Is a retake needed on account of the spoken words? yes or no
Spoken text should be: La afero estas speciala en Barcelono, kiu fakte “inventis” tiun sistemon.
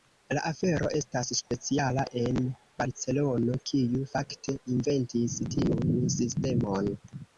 no